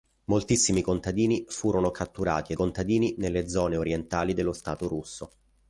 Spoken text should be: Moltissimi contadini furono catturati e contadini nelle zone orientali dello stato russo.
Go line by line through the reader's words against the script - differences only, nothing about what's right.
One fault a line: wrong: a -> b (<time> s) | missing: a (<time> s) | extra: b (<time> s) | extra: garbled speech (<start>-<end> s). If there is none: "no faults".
no faults